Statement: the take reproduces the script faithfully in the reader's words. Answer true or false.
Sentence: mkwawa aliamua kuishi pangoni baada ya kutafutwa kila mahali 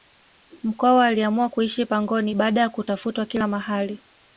true